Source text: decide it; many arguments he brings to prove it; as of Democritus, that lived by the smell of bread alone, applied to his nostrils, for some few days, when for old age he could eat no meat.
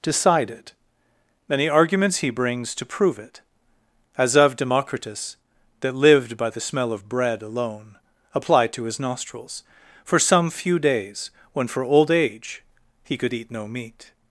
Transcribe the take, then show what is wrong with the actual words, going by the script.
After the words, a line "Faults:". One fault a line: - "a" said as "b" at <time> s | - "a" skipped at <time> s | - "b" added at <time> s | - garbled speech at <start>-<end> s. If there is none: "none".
decide it; many arguments he brings to prove it; as of Democritus, that lived by the smell of bread alone, applied to his nostrils, for some few days, when for old age he could eat no meat.
Faults:
none